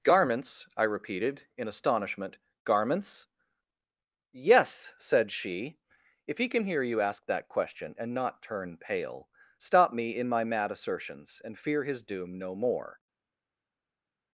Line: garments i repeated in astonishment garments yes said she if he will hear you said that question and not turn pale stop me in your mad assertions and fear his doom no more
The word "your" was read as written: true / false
false